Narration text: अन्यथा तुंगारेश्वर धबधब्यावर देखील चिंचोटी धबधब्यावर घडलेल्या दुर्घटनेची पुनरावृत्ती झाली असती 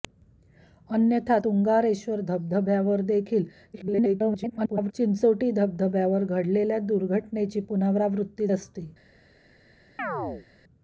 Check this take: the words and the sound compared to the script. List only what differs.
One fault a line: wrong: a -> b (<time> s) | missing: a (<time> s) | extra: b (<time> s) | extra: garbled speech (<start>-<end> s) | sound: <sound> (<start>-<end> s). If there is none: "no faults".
extra: garbled speech (3.7-4.9 s)
missing: झाली (8.5 s)
sound: chirp (10.0-10.5 s)